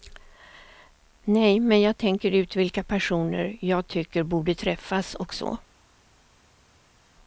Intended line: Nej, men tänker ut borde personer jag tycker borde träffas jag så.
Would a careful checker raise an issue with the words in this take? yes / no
yes